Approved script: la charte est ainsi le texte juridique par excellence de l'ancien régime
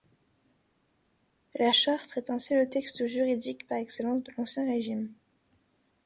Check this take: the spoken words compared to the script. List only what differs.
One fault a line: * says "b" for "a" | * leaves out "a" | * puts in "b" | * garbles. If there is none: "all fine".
all fine